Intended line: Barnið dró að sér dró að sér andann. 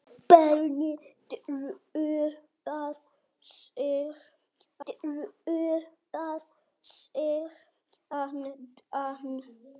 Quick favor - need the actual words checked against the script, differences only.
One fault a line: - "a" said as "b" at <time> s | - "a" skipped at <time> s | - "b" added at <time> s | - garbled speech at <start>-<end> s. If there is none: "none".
none